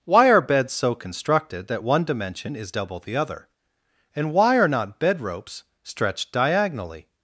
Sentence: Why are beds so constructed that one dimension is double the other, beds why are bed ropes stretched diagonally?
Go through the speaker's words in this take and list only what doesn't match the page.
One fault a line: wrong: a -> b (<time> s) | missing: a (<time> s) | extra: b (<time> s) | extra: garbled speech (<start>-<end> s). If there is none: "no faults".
wrong: beds -> and (4.1 s)
extra: not (4.7 s)